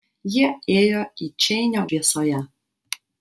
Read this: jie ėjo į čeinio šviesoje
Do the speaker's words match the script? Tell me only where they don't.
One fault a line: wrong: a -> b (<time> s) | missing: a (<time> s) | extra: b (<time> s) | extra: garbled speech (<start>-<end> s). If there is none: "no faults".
no faults